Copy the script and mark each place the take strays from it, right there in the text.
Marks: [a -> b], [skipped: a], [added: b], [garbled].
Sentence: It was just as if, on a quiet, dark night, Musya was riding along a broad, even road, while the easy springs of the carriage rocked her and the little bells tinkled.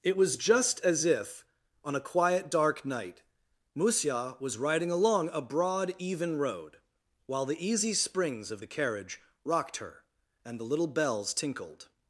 It was just as if, on a quiet, dark night, Musya was riding along a broad, even road, while the easy springs of the carriage rocked her and the little bells tinkled.